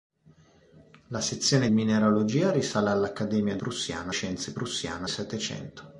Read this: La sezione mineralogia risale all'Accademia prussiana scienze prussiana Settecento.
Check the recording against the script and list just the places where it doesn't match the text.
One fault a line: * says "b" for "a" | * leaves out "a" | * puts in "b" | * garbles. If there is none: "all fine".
all fine